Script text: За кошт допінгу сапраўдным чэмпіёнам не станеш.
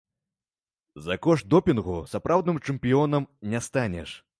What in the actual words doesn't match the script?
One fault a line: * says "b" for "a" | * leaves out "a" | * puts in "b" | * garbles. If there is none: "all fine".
all fine